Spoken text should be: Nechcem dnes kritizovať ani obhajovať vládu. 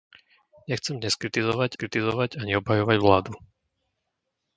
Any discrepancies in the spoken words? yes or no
yes